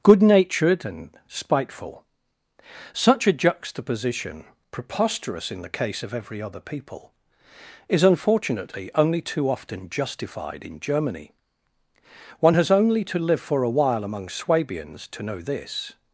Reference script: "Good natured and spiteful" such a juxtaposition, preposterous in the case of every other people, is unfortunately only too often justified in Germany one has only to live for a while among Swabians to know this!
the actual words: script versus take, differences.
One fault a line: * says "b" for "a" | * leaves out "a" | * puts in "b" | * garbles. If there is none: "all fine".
all fine